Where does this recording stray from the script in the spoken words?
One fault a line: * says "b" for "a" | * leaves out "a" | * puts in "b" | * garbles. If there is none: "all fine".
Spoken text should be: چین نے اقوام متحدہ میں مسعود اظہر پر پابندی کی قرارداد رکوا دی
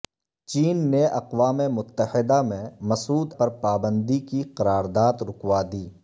* leaves out "اظہر"